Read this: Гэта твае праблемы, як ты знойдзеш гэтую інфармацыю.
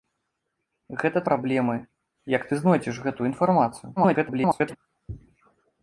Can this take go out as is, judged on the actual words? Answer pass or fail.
fail